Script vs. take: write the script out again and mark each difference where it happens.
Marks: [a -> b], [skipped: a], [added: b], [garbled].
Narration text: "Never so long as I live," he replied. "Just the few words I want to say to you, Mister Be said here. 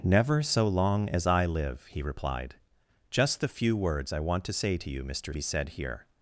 "Never so long as I live," he replied. "Just the few words I want to say to you, Mister Be said here.